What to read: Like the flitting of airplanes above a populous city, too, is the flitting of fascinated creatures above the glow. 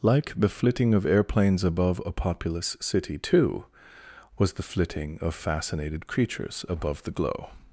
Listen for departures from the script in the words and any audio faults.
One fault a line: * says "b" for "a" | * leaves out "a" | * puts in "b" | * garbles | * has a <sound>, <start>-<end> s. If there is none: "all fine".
* says "was" for "is"